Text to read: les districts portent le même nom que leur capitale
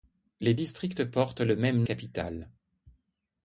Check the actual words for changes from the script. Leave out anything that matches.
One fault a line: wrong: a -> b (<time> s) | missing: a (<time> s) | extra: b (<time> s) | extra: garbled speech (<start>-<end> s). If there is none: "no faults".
missing: nom que leur (1.8 s)